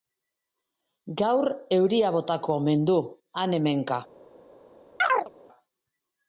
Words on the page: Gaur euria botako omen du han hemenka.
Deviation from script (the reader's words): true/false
false